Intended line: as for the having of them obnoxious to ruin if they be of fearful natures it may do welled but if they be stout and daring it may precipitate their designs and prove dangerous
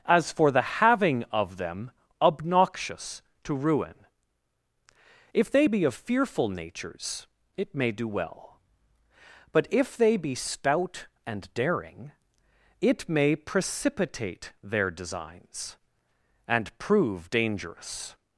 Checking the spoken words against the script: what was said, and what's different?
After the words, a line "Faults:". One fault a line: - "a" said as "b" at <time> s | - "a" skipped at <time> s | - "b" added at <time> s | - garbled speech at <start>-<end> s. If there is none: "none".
as for the having of them obnoxious to ruin if they be of fearful natures it may do well but if they be stout and daring it may precipitate their designs and prove dangerous
Faults:
- "welled" said as "well" at 8.1 s